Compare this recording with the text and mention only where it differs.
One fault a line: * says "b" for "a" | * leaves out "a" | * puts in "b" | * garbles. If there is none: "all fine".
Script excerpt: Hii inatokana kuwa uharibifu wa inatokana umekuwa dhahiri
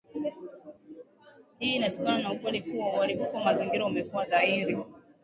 * puts in "na ukweli"
* says "mazingira" for "inatokana"